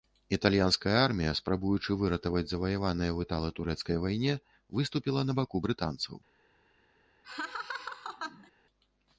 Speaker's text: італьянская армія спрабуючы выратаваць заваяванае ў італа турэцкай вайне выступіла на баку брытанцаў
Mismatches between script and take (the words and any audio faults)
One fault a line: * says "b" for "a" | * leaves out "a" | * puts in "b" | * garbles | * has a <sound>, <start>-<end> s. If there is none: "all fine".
* has a laugh, 7.2-8.5 s